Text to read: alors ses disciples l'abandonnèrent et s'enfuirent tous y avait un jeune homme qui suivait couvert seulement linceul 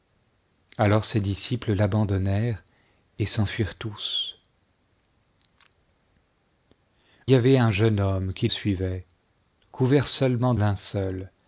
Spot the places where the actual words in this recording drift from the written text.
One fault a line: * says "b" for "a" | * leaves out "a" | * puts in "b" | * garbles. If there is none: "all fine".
all fine